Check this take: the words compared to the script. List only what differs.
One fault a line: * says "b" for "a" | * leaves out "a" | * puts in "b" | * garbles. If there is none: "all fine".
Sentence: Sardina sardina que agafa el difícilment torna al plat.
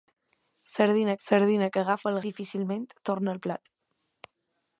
all fine